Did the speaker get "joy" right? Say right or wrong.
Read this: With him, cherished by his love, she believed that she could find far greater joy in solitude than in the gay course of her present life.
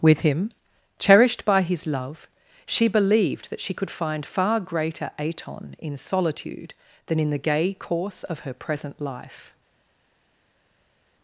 wrong